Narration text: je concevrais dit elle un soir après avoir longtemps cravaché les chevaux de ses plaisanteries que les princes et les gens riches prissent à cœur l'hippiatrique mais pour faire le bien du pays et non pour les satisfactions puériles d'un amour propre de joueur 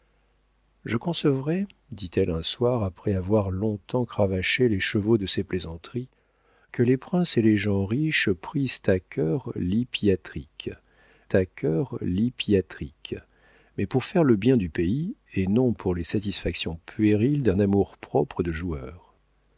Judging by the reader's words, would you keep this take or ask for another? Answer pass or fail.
fail